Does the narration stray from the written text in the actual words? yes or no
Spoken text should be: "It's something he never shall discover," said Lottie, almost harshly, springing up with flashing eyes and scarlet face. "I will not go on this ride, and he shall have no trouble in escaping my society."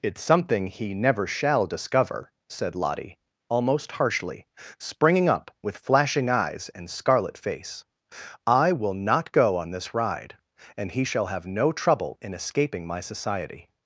no